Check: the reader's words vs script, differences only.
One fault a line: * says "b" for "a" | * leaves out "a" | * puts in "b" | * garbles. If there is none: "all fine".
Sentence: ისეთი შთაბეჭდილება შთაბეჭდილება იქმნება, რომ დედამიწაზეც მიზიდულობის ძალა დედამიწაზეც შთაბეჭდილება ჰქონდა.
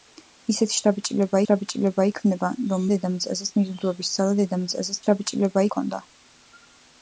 all fine